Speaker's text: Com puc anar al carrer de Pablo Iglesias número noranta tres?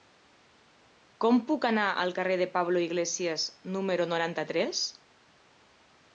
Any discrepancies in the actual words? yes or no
no